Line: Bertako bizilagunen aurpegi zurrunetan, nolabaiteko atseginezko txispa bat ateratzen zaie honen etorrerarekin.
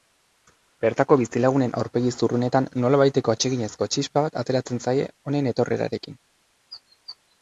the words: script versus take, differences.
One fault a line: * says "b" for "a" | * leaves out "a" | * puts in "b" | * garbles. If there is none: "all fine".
all fine